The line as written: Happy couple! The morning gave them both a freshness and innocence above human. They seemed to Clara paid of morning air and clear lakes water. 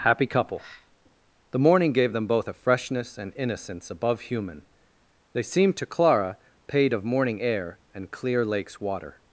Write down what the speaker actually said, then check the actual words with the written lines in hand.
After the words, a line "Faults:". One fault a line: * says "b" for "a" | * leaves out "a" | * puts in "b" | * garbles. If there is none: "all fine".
Happy couple! The morning gave them both a freshness and innocence above human. They seemed to Clara paid of morning air and clear lakes water.
Faults:
all fine